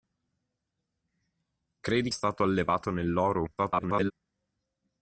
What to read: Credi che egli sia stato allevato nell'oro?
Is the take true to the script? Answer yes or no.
no